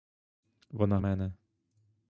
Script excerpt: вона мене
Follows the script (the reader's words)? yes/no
yes